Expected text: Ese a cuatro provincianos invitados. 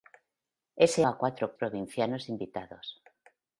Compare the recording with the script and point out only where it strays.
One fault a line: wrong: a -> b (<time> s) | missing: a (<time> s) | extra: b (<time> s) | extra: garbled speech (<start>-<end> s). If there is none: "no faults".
no faults